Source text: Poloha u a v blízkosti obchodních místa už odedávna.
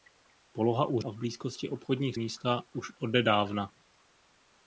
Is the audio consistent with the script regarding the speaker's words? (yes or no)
yes